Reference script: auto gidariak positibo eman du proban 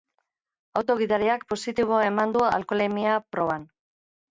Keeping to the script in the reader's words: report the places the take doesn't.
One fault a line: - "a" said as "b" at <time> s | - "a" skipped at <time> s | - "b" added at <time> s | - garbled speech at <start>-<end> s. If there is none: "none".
- "alkoholemia" added at 2.5 s